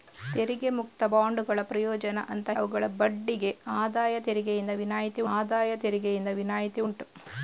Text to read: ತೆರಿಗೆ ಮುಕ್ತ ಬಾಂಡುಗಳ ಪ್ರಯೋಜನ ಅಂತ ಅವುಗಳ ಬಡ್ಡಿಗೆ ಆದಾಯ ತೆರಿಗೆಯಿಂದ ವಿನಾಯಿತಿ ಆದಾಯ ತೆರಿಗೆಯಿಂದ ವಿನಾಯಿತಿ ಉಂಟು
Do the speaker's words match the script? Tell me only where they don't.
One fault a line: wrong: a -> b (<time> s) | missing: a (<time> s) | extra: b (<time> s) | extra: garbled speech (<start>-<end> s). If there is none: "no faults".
no faults